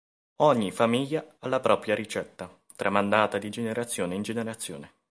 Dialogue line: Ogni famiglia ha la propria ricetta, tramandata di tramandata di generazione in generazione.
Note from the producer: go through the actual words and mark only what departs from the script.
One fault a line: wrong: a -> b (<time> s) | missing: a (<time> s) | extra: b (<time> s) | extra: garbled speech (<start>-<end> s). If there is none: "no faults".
missing: tramandata di (3.5 s)